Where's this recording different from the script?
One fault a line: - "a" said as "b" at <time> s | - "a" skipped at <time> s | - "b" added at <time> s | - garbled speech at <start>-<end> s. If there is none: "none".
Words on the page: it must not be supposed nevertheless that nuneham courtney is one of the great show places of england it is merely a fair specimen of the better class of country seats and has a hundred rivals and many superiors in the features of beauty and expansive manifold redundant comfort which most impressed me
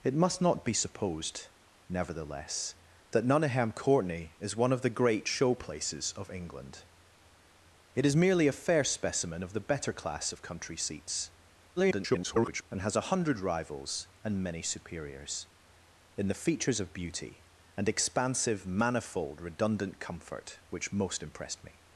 - garbled speech at 11.8-12.6 s